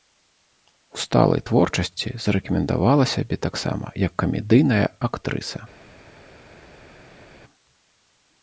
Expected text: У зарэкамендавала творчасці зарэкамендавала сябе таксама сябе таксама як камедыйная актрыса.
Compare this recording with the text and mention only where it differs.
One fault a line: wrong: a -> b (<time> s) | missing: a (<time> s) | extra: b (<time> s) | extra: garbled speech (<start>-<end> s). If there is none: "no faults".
wrong: зарэкамендавала -> сталай (1.0 s)
missing: сябе таксама (3.9 s)